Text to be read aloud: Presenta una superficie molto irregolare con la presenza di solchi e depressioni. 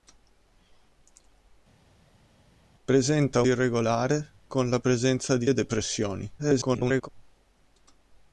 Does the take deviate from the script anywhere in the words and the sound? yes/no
yes